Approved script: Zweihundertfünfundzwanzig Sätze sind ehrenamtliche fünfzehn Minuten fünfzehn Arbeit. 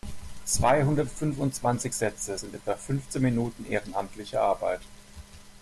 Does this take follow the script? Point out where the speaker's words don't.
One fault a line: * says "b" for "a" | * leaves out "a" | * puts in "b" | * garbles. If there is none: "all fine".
* says "etwa" for "ehrenamtliche"
* says "ehrenamtliche" for "fünfzehn"